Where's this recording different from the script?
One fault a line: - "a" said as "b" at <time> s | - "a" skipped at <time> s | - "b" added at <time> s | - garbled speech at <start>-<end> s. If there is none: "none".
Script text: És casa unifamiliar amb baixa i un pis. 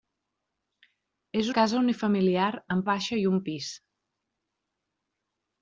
none